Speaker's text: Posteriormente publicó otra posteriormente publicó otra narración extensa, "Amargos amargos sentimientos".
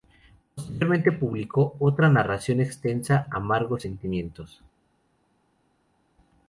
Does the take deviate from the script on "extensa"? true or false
false